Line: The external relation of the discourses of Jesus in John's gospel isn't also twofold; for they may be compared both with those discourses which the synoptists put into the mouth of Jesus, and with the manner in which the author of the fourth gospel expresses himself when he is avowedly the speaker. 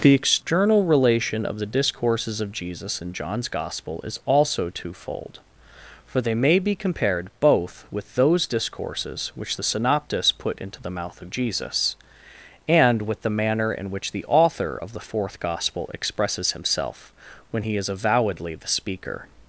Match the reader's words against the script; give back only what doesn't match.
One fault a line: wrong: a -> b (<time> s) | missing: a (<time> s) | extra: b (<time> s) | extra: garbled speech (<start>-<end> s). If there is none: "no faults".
wrong: isn't -> is (4.0 s)